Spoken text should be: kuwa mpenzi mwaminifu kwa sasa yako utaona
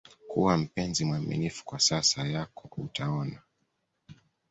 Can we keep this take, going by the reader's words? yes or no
yes